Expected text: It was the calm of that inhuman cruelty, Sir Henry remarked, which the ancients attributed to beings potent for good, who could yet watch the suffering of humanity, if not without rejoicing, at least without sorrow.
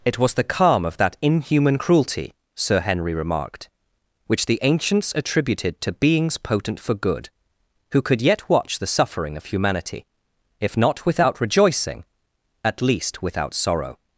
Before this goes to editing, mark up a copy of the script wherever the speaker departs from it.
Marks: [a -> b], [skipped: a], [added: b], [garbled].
It was the calm of that inhuman cruelty, Sir Henry remarked, which the ancients attributed to beings potent for good, who could yet watch the suffering of humanity, if not without rejoicing, at least without sorrow.